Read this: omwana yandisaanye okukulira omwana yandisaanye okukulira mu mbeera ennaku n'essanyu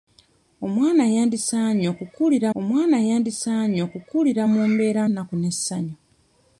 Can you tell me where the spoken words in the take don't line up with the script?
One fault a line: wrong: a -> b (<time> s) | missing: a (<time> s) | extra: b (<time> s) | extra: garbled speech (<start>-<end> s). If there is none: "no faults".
no faults